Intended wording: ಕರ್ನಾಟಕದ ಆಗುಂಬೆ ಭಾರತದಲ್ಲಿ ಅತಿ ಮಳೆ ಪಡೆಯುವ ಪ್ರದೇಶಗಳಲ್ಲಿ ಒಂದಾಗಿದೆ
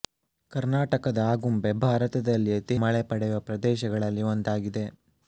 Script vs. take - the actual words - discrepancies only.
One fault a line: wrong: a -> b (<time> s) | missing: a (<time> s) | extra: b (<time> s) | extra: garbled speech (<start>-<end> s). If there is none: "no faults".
no faults